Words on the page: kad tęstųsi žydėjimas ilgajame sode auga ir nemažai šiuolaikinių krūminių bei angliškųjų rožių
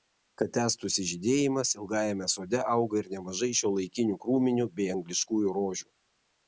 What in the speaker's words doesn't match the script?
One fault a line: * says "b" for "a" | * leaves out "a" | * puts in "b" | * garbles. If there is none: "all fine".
all fine